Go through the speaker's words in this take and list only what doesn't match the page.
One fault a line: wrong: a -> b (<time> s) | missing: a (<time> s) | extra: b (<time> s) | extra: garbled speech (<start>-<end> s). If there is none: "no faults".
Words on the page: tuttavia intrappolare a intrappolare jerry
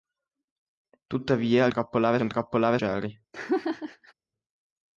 no faults